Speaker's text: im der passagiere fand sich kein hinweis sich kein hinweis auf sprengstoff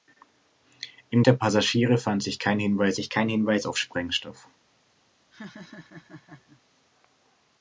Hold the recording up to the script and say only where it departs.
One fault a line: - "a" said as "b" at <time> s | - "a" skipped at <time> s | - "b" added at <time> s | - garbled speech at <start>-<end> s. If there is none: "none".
none